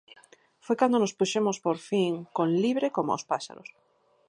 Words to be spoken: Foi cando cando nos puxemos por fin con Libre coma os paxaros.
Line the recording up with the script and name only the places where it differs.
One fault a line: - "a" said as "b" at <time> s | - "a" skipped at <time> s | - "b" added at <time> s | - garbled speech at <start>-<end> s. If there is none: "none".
- "cando" skipped at 1.0 s